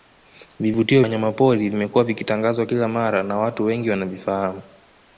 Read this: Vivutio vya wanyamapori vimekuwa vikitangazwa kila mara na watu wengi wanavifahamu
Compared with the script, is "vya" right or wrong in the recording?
wrong